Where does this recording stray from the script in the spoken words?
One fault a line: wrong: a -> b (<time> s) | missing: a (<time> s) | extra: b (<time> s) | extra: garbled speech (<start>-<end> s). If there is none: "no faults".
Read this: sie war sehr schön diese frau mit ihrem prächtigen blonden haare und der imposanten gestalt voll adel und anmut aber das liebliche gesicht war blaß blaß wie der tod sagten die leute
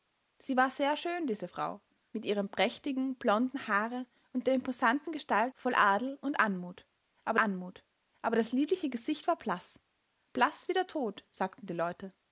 extra: anmut aber (7.4 s)